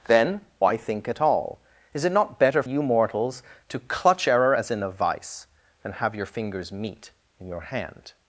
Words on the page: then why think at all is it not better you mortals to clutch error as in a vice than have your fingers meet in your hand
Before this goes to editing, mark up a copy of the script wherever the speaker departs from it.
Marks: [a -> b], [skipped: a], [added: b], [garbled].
then why think at all is it not better you mortals to clutch error as in a vice than have your fingers meet in your hand